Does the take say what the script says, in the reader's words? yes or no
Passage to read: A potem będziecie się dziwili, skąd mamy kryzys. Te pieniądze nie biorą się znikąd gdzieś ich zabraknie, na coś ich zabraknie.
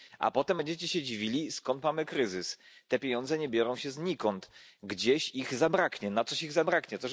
yes